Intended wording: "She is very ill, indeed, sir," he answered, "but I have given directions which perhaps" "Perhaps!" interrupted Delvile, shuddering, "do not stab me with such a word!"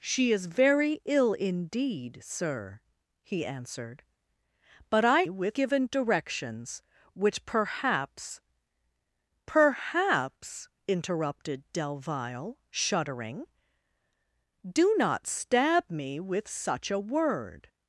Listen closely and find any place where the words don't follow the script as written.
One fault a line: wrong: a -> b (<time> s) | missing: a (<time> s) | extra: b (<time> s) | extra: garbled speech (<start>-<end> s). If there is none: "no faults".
wrong: have -> with (5.3 s)